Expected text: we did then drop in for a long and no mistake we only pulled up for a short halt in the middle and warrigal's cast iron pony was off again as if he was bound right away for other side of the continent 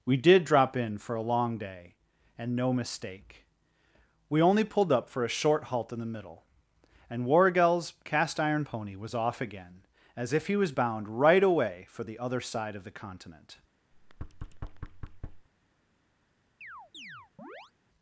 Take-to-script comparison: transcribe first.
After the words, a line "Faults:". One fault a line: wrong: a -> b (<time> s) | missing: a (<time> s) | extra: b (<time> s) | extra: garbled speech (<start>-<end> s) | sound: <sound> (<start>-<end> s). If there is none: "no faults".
we did drop in for a long day and no mistake we only pulled up for a short halt in the middle and warrigal's cast iron pony was off again as if he was bound right away for the other side of the continent
Faults:
missing: then (0.5 s)
extra: day (1.6 s)
extra: the (12.0 s)
sound: thud (13.9-15.5 s)
sound: chirp (16.6-17.7 s)